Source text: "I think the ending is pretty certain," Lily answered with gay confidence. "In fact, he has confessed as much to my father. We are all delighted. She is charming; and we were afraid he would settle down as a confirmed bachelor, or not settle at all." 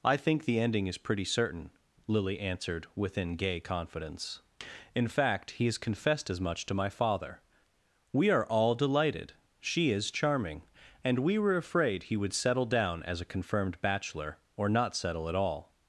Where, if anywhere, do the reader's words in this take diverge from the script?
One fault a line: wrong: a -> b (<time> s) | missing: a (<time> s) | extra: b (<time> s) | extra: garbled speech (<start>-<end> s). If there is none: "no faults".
wrong: with -> within (3.0 s)